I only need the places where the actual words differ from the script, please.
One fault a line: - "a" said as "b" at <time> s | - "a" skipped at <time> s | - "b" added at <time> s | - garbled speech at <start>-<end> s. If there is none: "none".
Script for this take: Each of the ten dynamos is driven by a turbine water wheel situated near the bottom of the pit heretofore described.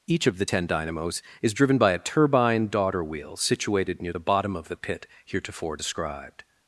- "water" said as "daughter" at 2.7 s